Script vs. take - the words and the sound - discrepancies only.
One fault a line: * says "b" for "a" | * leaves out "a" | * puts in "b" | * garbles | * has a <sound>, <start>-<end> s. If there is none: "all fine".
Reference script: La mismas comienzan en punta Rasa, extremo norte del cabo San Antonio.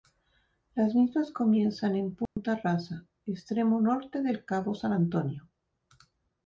* says "Las" for "La"
* has a dropout, 2.3-2.4 s